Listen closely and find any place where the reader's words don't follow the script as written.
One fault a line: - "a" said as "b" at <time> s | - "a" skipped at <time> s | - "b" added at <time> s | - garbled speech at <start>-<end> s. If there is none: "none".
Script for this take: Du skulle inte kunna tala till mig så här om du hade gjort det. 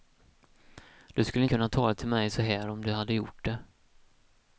- "inte" skipped at 1.4 s